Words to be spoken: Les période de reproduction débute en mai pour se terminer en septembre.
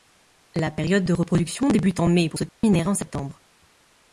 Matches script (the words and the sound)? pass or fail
fail